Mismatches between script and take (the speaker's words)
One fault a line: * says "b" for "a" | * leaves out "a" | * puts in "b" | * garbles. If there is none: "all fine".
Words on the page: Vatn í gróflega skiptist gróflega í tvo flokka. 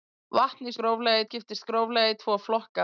all fine